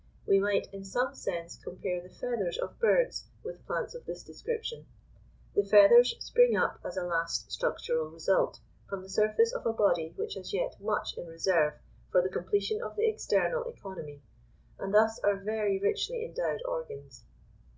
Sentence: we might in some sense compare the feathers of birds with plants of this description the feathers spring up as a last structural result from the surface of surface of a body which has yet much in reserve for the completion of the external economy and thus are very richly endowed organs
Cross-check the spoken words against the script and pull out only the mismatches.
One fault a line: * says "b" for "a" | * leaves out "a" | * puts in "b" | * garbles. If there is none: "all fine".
* leaves out "surface of"